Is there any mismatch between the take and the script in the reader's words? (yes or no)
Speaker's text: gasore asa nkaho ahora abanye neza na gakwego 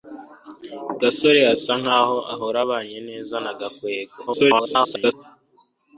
yes